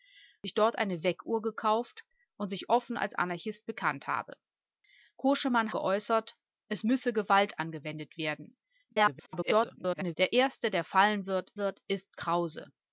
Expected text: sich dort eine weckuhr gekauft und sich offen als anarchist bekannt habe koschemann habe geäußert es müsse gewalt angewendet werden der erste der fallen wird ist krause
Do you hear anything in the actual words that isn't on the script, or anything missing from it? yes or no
yes